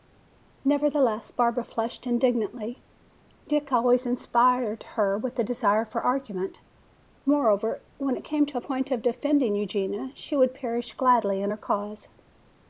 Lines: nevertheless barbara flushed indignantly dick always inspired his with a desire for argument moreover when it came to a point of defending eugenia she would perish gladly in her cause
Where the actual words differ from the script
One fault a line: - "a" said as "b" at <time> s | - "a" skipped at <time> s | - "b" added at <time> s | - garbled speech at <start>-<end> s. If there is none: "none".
- "his" said as "her" at 5.0 s